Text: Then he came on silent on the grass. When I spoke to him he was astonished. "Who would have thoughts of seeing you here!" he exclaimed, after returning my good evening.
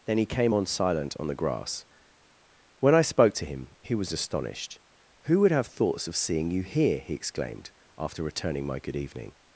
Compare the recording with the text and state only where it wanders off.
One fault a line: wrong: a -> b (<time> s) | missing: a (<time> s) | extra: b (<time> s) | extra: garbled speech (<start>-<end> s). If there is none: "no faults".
no faults